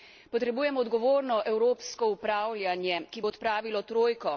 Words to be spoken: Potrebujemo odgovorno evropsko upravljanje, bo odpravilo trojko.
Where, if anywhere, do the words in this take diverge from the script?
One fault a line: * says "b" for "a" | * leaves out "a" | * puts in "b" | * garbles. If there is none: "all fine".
* puts in "ki"